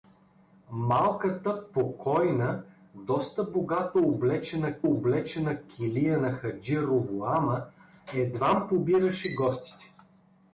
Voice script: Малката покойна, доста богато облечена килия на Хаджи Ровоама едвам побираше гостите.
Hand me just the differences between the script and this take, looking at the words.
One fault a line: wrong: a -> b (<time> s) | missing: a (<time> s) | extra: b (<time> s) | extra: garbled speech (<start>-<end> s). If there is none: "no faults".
extra: облечена (4.8 s)